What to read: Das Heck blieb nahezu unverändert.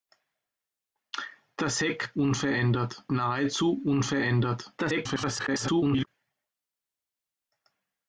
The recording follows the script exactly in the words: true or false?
false